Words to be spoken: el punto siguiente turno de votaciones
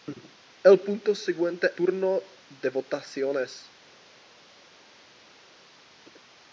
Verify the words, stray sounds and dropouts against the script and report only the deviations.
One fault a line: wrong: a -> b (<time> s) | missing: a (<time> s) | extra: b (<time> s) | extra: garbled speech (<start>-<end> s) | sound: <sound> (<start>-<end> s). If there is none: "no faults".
no faults